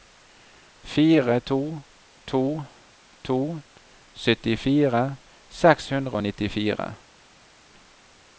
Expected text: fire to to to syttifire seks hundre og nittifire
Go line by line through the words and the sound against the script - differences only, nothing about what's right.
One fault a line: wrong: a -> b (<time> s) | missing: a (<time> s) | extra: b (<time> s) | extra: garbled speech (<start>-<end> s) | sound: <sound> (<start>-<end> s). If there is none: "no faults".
no faults